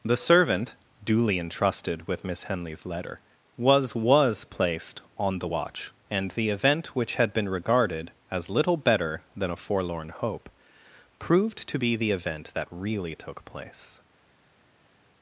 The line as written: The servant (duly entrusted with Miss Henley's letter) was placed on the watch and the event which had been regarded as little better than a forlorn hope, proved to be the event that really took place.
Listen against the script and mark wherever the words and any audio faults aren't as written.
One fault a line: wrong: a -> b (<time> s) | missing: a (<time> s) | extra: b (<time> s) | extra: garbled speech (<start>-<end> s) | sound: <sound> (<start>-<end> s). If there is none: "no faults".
extra: was (3.9 s)